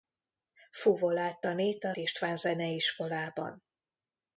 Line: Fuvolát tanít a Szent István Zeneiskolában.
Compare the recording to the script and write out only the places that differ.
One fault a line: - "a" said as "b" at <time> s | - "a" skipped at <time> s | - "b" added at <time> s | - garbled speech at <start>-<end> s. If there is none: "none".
- "Szent" skipped at 1.9 s